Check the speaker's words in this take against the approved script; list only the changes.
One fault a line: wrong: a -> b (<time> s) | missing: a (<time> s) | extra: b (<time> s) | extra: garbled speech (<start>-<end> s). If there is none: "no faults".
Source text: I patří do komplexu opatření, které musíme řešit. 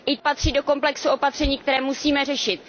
no faults